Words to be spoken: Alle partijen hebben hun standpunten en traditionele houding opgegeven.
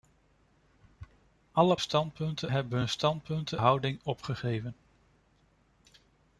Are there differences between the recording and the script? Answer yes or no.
yes